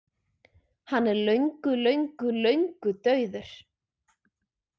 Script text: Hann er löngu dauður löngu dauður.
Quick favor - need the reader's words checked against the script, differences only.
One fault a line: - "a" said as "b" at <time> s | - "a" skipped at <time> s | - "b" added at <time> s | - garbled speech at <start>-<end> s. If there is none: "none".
- "dauður" said as "löngu" at 1.8 s